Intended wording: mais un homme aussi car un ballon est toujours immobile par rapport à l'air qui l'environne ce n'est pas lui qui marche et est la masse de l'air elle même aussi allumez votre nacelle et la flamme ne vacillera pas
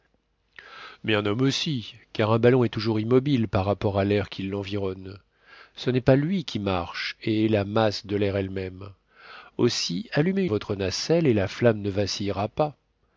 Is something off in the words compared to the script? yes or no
no